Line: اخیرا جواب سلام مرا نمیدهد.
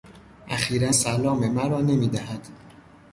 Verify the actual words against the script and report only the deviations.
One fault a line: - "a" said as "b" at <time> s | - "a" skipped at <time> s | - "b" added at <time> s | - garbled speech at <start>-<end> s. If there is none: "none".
- "جواب" skipped at 0.9 s